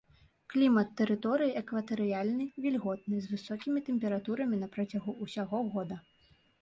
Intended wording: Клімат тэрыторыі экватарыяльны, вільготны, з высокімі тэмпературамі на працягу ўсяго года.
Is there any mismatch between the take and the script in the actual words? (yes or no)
no